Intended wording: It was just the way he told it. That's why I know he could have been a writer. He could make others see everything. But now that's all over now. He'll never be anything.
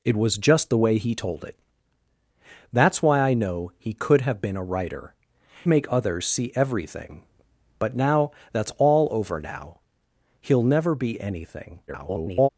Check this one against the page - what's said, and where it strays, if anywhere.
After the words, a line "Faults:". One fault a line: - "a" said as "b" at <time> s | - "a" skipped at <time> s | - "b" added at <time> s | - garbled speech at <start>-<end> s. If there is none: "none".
It was just the way he told it. That's why I know he could have been a writer. Make others see everything. But now that's all over now. He'll never be anything. [garbled]
Faults:
- "He could" skipped at 5.1 s
- garbled speech at 11.9-12.5 s